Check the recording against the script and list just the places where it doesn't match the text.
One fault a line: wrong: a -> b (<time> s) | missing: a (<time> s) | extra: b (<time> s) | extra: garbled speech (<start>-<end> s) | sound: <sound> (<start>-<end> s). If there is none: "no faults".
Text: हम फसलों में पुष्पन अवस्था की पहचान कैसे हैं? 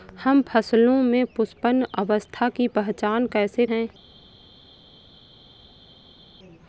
no faults